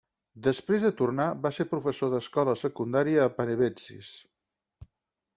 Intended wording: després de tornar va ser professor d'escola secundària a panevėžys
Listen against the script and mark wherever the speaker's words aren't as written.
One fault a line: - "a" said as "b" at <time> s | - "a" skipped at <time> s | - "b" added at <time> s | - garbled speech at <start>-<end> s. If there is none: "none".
none